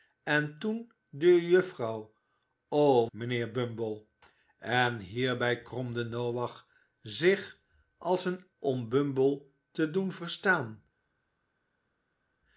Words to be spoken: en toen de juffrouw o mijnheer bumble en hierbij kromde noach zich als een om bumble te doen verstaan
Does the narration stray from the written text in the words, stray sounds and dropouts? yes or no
no